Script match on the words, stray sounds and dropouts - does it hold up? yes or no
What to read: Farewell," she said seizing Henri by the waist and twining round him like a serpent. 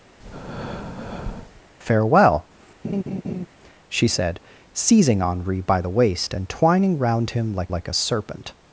no